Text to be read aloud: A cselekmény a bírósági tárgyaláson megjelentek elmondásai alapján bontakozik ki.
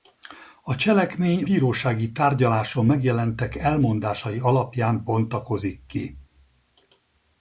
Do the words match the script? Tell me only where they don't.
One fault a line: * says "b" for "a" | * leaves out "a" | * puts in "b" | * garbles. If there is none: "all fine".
* leaves out "a"